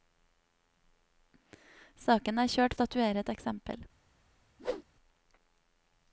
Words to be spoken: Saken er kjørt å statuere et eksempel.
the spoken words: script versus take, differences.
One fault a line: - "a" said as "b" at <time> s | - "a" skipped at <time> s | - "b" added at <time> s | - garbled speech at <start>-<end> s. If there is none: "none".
none